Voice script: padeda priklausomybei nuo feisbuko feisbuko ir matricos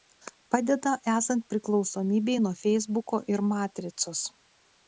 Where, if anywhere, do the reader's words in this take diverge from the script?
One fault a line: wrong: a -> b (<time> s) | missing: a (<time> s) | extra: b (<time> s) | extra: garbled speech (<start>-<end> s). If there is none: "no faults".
extra: esant (1.1 s)
missing: feisbuko (3.2 s)